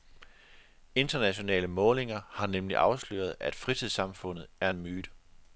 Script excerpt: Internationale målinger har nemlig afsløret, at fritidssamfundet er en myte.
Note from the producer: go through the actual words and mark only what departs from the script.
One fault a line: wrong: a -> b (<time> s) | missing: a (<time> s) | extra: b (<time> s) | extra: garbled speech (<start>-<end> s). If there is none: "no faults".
no faults